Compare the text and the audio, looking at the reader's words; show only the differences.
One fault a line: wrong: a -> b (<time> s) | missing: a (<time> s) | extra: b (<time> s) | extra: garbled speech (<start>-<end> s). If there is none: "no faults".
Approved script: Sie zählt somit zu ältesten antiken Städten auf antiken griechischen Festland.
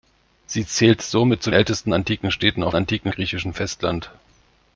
no faults